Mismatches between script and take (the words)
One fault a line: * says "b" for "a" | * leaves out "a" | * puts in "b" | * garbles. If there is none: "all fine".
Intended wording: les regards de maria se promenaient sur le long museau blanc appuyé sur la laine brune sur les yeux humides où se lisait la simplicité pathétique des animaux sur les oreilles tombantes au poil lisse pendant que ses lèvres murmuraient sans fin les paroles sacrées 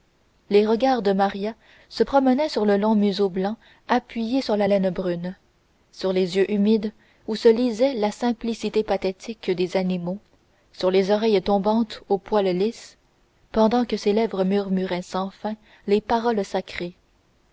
all fine